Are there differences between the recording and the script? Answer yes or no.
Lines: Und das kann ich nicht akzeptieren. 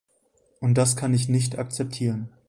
no